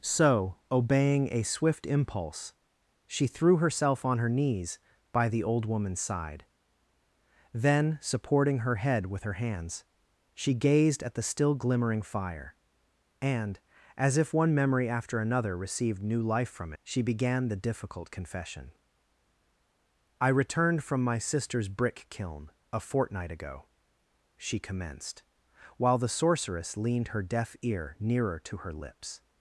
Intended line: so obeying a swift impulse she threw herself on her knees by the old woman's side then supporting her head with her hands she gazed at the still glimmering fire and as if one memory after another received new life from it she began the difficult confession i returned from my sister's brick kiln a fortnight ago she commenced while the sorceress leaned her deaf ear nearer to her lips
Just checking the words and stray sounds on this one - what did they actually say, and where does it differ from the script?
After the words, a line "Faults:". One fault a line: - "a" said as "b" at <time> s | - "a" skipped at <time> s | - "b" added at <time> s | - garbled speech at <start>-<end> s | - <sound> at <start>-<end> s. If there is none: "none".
so obeying a swift impulse she threw herself on her knees by the old woman's side then supporting her head with her hands she gazed at the still glimmering fire and as if one memory after another received new life from she began the difficult confession i returned from my sister's brick kiln a fortnight ago she commenced while the sorceress leaned her deaf ear nearer to her lips
Faults:
- "it" skipped at 16.7 s